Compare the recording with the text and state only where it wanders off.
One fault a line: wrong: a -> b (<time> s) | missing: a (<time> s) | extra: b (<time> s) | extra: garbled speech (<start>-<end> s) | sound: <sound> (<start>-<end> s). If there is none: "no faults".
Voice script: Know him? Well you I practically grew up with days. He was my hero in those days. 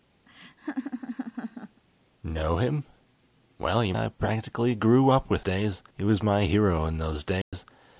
sound: laugh (0.3-1.8 s)
sound: dropout (7.4-7.5 s)